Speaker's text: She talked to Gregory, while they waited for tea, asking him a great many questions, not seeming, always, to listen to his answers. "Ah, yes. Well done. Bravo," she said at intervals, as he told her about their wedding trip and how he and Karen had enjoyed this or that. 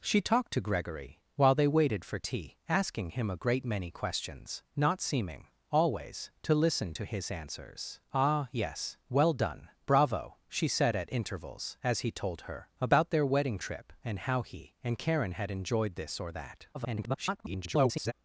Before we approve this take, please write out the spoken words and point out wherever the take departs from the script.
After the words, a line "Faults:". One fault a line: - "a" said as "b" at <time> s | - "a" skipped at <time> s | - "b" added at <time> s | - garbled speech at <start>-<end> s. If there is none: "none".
She talked to Gregory, while they waited for tea, asking him a great many questions, not seeming, always, to listen to his answers. "Ah, yes. Well done. Bravo," she said at intervals, as he told her about their wedding trip and how he and Karen had enjoyed this or that. [garbled]
Faults:
- garbled speech at 16.7-18.1 s